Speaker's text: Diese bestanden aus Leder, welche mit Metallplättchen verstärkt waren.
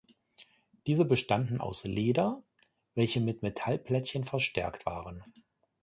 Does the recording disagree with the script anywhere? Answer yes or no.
no